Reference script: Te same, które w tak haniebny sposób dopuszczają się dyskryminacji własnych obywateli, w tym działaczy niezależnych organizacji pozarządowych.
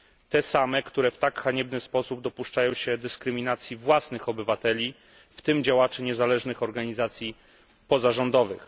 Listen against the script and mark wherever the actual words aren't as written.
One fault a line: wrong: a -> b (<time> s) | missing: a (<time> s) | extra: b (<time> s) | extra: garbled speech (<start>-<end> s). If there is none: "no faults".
no faults